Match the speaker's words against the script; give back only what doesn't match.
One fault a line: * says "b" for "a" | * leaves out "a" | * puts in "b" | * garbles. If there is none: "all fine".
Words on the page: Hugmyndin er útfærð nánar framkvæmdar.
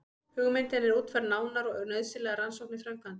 * puts in "og nauðsynlegar rannsóknir"